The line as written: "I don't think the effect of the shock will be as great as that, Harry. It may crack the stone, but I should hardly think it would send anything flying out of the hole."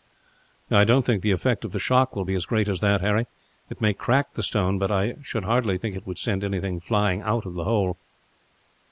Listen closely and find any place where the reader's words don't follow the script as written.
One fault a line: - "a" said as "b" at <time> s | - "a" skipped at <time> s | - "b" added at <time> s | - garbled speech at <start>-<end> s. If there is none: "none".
none